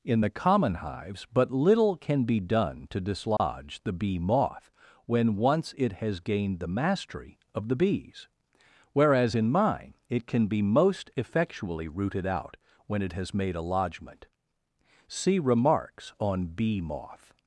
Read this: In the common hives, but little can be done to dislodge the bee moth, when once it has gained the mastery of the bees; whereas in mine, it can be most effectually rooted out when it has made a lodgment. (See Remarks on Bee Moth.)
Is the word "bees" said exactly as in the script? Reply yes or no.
yes